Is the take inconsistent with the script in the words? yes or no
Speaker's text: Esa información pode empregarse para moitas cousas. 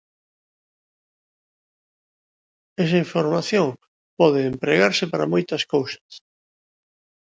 no